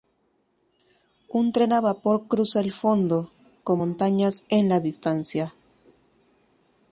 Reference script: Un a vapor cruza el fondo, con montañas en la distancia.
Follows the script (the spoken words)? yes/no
no